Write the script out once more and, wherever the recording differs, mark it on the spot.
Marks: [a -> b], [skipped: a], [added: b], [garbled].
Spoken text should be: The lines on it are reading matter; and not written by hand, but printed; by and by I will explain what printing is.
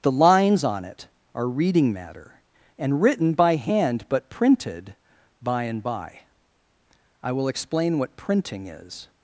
The lines on it are reading matter; and [skipped: not] written by hand, but printed; by and by I will explain what printing is.